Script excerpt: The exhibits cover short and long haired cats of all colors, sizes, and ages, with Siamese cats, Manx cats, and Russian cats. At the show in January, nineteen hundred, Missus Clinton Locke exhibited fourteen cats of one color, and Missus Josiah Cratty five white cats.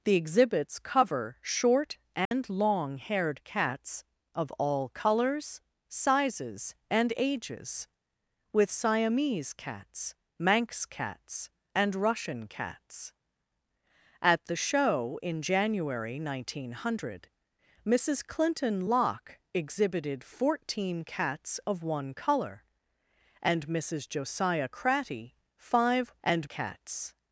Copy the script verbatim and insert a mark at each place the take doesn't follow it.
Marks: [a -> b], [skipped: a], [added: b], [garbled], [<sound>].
The exhibits cover short and [dropout] long haired cats of all colors, sizes, and ages, with Siamese cats, Manx cats, and Russian cats. At the show in January, nineteen hundred, Missus Clinton Locke exhibited fourteen cats of one color, and Missus Josiah Cratty five [white -> and] cats.